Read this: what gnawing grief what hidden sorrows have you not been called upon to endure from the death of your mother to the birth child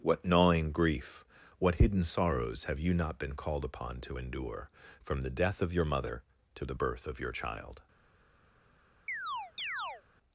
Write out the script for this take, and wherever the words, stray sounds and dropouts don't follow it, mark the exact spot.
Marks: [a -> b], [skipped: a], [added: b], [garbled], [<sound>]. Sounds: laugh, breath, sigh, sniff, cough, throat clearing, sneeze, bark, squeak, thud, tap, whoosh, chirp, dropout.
what gnawing grief what hidden sorrows have you not been called upon to endure from the death of your mother to the birth [added: of your] child [chirp]